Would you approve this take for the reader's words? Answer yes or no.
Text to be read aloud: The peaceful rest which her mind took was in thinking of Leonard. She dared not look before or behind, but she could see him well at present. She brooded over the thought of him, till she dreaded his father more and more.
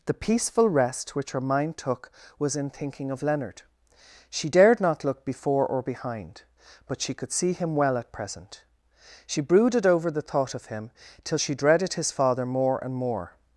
yes